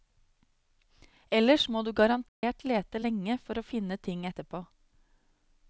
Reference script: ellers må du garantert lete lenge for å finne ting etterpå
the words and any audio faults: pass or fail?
fail